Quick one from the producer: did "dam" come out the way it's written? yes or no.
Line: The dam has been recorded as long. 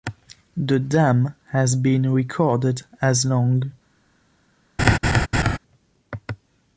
yes